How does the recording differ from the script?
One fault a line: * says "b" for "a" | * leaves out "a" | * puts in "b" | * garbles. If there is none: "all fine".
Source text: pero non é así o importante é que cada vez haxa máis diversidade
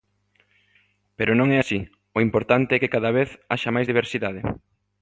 all fine